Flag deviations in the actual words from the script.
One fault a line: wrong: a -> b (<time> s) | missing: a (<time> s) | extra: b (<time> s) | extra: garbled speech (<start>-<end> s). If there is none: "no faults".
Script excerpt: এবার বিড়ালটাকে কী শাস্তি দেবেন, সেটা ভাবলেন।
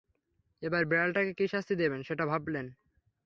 no faults